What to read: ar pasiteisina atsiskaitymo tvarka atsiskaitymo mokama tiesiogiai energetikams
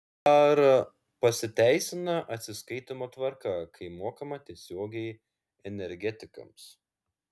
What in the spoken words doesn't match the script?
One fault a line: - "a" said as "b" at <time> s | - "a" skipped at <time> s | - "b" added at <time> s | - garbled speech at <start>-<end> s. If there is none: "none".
- "atsiskaitymo" said as "kai" at 3.7 s